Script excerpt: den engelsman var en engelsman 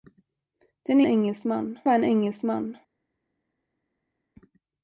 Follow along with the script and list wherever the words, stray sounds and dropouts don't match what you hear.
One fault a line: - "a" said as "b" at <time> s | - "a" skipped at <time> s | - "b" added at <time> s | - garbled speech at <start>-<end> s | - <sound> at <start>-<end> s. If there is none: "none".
none